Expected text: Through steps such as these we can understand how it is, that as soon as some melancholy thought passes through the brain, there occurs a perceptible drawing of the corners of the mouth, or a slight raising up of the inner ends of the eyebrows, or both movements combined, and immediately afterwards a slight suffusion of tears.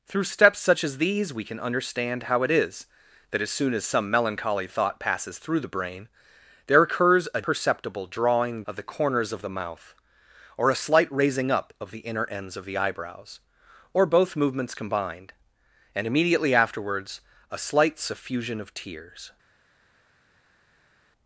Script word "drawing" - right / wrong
right